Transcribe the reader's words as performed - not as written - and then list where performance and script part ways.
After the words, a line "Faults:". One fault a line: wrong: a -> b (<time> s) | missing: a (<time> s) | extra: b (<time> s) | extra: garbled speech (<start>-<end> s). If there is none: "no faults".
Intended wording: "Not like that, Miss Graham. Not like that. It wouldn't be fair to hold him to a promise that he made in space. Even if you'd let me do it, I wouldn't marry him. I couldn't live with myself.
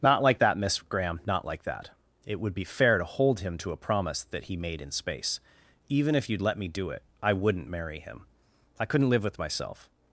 "Not like that, Miss Graham. Not like that. It would be fair to hold him to a promise that he made in space. Even if you'd let me do it, I wouldn't marry him. I couldn't live with myself.
Faults:
wrong: wouldn't -> would (2.4 s)